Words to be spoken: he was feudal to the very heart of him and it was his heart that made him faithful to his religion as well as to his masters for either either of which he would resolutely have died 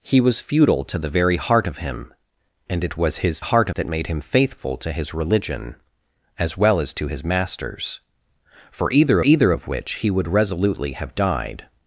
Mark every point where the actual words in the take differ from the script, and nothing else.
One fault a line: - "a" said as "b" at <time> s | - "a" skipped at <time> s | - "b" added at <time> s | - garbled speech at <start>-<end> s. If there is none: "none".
none